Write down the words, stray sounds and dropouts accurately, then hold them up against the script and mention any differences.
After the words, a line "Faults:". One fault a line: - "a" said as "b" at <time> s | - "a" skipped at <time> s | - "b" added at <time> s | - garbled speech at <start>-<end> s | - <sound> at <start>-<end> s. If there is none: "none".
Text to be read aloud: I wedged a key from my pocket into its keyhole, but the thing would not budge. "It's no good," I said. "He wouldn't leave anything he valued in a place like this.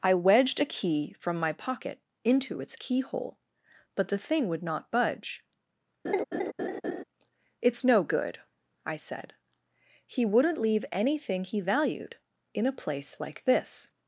I wedged a key from my pocket into its keyhole, but the thing would not budge. "It's no good," I said. "He wouldn't leave anything he valued in a place like this.
Faults:
- laugh at 6.0-7.0 s